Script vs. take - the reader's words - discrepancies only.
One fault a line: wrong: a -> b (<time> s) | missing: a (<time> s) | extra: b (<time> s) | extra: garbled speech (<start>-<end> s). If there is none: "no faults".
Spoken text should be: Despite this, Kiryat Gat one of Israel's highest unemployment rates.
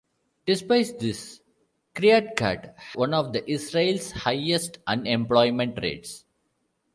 no faults